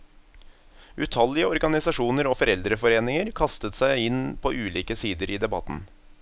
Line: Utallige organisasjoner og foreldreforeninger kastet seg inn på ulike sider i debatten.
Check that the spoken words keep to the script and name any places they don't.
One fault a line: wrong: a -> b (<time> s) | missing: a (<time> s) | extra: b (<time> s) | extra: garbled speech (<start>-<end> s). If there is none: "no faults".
no faults